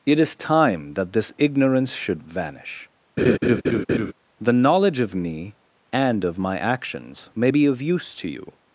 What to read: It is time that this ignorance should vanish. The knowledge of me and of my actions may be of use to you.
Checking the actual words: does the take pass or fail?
pass